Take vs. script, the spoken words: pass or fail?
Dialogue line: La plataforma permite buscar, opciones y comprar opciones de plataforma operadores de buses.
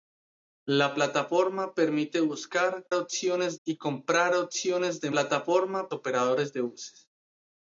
pass